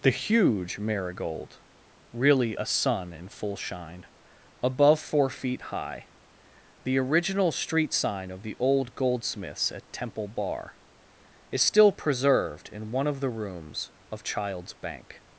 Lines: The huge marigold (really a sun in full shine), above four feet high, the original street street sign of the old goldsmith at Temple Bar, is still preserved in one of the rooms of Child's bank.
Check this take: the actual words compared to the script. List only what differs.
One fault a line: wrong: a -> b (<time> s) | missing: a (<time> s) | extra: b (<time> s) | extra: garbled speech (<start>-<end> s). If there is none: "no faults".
missing: street (7.9 s)
wrong: goldsmith -> goldsmiths (9.0 s)